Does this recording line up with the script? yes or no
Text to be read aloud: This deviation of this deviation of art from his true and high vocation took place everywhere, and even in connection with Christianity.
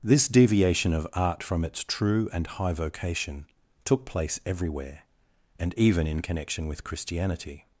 no